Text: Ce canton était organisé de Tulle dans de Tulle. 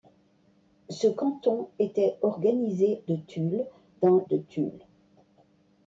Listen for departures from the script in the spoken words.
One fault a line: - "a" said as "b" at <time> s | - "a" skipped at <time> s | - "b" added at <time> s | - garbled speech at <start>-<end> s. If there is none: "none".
none